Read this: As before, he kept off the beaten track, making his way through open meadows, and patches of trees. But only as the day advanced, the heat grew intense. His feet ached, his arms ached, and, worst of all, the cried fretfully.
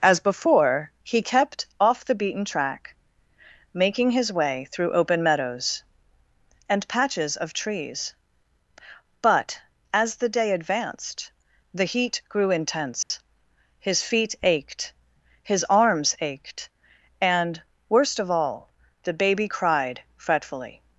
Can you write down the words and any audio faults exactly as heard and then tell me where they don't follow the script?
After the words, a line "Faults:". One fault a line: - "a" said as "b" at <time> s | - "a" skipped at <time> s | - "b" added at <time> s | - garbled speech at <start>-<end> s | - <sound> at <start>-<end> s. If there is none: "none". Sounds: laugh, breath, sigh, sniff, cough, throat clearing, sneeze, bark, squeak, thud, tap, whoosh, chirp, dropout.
As before, he kept off the beaten track, making his way through open meadows, and patches of trees. But as the day advanced, the heat grew intense. His feet ached, his arms ached, and, worst of all, the baby cried fretfully.
Faults:
- "only" skipped at 9.6 s
- dropout at 13.0-13.1 s
- "baby" added at 19.1 s